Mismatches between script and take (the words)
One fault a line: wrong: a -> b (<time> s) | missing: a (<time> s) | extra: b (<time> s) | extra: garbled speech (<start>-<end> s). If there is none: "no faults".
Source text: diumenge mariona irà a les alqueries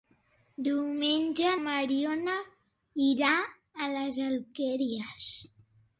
no faults